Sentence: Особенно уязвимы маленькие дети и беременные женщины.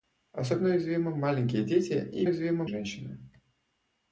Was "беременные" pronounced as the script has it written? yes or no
no